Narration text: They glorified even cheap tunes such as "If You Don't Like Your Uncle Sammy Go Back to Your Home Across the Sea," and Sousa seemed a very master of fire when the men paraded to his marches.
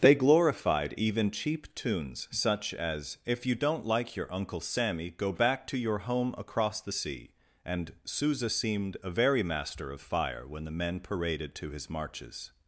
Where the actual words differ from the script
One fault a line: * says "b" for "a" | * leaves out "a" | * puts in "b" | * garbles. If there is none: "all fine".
all fine